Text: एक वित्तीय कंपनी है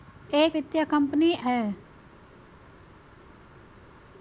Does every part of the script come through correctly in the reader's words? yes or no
yes